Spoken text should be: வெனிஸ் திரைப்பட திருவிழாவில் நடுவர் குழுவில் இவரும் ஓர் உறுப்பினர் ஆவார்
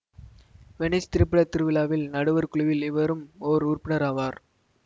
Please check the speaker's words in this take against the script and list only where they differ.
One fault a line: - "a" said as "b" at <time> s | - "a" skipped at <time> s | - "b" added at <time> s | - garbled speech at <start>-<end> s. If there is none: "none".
none